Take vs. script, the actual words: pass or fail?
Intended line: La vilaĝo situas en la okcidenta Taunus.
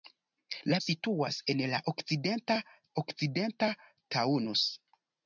fail